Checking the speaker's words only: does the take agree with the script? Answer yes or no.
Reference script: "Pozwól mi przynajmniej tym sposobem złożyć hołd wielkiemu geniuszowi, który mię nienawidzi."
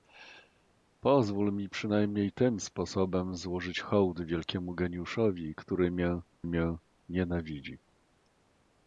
no